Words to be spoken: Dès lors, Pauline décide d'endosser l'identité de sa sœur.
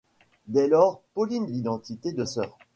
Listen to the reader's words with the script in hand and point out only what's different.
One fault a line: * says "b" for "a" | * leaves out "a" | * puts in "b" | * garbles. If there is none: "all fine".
* leaves out "décide d'endosser"
* leaves out "sa"